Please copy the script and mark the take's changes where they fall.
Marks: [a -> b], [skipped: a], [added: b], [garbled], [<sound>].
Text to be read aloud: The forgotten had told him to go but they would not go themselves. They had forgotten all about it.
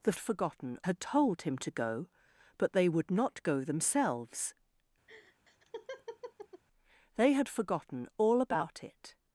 The forgotten had told him to go but they would not go themselves. [laugh] They had forgotten all about it.